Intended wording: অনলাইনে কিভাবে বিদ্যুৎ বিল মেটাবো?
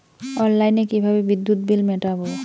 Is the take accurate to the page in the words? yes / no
yes